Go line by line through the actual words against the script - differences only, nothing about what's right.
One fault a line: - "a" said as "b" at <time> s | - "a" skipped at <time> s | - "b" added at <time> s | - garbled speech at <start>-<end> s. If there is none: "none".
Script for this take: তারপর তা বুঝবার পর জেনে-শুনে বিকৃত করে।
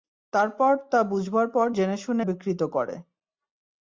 none